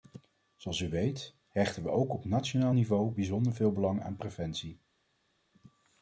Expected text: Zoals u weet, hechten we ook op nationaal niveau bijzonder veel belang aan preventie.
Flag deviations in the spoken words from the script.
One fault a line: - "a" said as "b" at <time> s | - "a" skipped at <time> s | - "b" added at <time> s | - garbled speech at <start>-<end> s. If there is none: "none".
none